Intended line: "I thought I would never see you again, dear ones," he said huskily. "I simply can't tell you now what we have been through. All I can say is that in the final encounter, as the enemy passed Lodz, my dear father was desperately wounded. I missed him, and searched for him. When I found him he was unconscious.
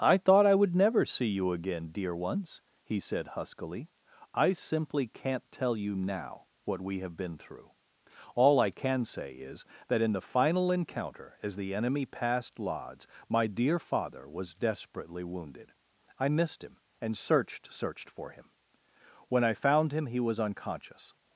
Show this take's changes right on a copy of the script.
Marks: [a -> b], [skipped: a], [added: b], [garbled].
"I thought I would never see you again, dear ones," he said huskily. "I simply can't tell you now what we have been through. All I can say is that in the final encounter, as the enemy passed Lodz, my dear father was desperately wounded. I missed him, and searched [added: searched] for him. When I found him he was unconscious.